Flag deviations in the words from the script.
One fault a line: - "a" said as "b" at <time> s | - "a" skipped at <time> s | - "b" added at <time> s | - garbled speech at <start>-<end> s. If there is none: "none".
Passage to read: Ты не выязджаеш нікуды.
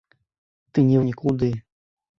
- "выязджаеш" skipped at 1.0 s